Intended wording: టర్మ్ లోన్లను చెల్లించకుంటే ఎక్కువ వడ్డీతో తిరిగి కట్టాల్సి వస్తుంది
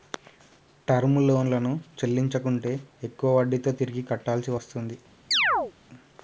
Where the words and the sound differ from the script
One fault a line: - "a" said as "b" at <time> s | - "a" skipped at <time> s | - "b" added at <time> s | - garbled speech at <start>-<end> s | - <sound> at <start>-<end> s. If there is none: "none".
- chirp at 5.3-5.7 s